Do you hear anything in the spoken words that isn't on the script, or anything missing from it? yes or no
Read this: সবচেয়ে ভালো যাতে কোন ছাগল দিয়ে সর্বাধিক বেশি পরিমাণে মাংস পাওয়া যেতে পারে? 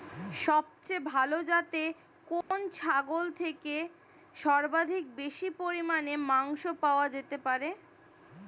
yes